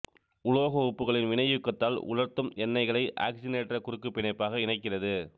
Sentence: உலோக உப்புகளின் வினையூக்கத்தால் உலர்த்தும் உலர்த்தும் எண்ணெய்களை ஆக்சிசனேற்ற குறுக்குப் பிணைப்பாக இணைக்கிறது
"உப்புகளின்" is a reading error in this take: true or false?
false